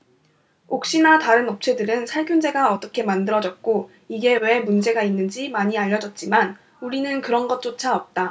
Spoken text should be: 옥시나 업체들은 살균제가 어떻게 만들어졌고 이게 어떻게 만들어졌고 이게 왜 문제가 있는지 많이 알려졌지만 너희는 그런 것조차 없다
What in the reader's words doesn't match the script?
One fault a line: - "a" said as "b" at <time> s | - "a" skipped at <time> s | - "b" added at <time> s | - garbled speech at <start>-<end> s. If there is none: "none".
- "다른" added at 1.2 s
- "어떻게 만들어졌고 이게" skipped at 4.4 s
- "너희는" said as "우리는" at 6.8 s